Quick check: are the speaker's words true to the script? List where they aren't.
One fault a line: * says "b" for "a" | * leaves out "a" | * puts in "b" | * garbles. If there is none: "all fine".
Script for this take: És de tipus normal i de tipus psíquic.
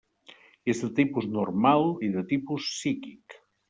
all fine